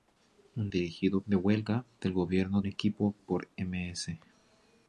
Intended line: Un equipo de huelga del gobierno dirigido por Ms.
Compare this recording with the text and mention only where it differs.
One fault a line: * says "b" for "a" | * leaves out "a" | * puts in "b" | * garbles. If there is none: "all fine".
* says "dirigido" for "equipo"
* says "equipo" for "dirigido"